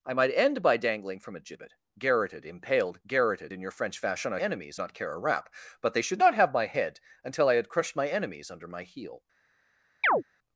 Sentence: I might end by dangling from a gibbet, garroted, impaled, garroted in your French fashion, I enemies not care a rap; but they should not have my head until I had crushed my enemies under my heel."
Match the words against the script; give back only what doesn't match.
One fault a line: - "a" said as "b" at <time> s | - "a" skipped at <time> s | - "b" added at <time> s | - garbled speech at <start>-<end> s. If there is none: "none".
none